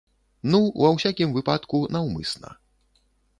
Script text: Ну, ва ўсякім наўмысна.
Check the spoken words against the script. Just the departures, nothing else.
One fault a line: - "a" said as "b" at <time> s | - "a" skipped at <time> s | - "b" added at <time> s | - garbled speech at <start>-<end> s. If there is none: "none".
- "выпадку" added at 1.4 s